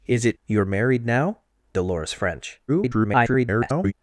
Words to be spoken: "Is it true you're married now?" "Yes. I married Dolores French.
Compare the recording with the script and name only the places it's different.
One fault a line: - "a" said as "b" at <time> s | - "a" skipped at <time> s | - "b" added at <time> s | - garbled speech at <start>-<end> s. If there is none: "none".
- "true" skipped at 0.4 s
- "Yes I married" skipped at 1.4 s
- garbled speech at 2.7-3.9 s